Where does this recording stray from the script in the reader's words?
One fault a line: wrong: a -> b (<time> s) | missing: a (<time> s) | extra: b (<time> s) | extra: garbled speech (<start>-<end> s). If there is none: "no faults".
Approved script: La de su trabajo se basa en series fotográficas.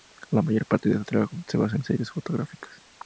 extra: mayor parte (0.4 s)